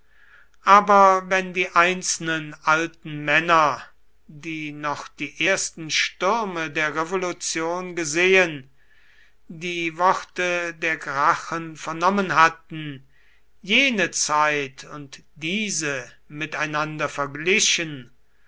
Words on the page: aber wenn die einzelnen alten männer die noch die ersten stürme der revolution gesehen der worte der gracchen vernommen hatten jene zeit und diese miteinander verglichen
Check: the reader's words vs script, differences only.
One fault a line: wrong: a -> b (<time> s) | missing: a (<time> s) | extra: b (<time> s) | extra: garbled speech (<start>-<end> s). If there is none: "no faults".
wrong: der -> die (9.5 s)